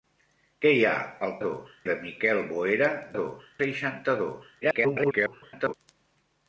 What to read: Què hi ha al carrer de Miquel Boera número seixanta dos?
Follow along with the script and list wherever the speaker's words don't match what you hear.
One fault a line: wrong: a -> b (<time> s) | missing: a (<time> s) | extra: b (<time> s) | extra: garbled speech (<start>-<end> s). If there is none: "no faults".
wrong: carrer -> dos (1.5 s)
wrong: número -> dos (3.2 s)
extra: garbled speech (4.6-5.7 s)